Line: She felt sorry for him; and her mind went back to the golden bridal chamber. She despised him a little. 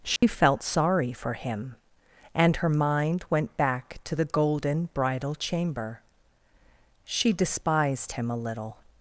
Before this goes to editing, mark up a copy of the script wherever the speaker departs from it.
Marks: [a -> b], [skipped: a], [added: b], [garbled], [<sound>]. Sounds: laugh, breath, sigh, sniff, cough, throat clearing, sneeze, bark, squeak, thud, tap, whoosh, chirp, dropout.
She [dropout] felt sorry for him; and her mind went back to the golden bridal chamber. She despised him a little.